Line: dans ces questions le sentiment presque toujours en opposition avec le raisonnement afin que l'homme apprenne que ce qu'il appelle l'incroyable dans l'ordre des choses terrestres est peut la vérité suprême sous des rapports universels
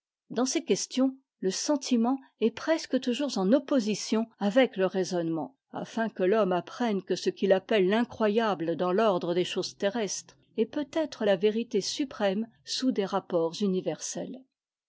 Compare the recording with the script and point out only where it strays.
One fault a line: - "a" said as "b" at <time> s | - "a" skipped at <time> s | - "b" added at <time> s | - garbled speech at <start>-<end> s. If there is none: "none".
- "est" added at 2.4 s
- "être" added at 10.9 s